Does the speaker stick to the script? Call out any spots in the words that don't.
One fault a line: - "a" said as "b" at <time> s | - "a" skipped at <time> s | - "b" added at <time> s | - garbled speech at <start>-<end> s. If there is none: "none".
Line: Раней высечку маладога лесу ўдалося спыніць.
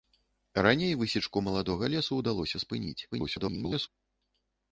- garbled speech at 3.1-3.9 s